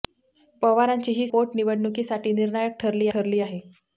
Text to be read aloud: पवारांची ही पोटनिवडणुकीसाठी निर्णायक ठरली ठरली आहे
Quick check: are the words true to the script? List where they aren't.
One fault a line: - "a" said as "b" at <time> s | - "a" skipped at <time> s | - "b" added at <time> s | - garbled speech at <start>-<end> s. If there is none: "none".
none